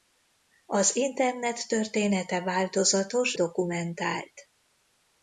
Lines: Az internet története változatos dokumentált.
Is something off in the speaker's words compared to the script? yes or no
no